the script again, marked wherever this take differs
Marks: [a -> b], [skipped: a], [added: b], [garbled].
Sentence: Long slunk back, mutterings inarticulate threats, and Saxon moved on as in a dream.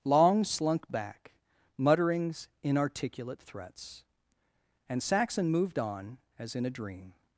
Long slunk back, mutterings inarticulate threats, and Saxon moved on as in a dream.